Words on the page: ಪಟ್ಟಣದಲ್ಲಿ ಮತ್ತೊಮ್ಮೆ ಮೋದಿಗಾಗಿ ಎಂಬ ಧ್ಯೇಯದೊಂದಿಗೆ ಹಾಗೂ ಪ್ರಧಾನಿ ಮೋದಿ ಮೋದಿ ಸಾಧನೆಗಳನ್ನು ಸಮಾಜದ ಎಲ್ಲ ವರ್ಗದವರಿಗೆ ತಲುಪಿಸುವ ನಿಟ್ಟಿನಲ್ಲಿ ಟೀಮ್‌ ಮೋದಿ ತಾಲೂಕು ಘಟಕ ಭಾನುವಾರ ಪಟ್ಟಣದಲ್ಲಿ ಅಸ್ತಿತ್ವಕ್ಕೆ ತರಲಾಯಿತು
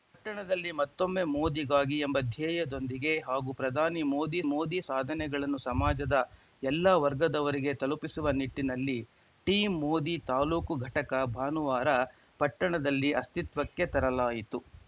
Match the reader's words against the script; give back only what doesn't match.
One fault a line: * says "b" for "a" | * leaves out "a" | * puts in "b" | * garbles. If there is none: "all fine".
all fine